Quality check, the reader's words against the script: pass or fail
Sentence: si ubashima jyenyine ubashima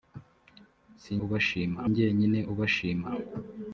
pass